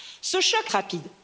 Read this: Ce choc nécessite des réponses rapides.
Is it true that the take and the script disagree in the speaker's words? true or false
true